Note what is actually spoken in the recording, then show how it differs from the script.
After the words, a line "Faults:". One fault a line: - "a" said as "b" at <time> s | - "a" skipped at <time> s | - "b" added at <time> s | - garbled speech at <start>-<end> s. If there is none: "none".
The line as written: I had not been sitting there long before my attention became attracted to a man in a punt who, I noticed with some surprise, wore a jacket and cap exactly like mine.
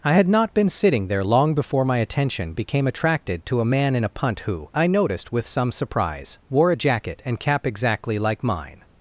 I had not been sitting there long before my attention became attracted to a man in a punt who, I noticed with some surprise, wore a jacket and cap exactly like mine.
Faults:
none